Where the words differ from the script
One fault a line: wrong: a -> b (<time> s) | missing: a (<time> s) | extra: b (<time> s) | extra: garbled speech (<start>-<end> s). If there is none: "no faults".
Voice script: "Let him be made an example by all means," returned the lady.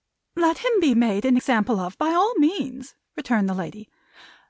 extra: of (1.8 s)